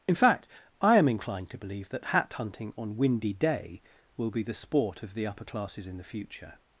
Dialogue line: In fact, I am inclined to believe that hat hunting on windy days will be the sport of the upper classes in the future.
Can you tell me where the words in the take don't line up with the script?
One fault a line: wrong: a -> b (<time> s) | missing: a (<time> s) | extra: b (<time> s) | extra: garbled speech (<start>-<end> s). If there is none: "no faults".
wrong: days -> day (3.3 s)